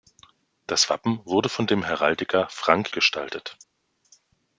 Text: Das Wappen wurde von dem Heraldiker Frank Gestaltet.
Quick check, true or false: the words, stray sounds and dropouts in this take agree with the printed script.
true